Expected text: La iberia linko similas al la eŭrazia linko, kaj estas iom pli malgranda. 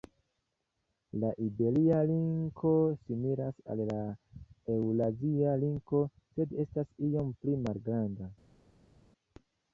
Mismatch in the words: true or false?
true